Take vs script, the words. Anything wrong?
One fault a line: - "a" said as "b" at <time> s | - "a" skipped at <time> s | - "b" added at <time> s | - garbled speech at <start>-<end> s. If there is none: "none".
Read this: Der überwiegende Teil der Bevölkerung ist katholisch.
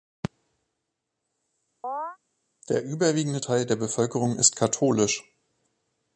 none